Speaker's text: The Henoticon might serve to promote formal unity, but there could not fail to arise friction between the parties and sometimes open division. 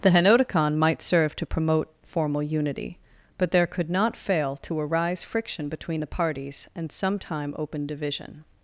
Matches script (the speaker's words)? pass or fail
fail